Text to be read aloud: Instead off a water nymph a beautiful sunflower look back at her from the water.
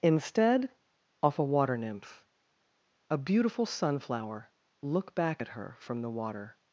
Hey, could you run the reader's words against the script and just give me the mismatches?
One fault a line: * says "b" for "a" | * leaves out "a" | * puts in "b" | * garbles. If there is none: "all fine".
all fine